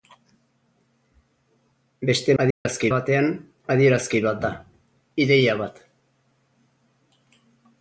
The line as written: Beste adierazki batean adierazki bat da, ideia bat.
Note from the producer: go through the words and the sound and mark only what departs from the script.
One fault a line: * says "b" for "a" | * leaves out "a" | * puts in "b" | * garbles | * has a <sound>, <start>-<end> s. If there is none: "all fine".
* has a dropout, 2.5-2.7 s